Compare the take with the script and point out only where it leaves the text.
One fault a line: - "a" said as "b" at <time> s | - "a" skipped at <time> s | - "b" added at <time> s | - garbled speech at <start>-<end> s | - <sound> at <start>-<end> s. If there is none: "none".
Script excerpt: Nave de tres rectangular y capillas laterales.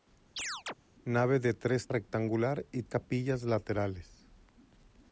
- chirp at 0.4-0.7 s